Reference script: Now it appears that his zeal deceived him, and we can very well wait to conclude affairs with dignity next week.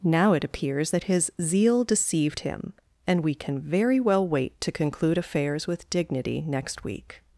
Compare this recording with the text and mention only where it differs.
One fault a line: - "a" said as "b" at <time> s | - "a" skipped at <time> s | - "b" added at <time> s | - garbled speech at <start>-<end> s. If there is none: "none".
none